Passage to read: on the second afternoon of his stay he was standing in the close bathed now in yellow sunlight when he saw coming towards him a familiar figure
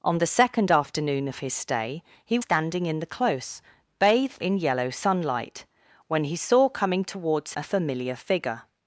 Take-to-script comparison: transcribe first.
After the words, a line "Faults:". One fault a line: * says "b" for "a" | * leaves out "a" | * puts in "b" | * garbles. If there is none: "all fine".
on the second afternoon of his stay he standing in the close bathed in yellow sunlight when he saw coming towards a familiar figure
Faults:
* leaves out "was"
* leaves out "now"
* leaves out "him"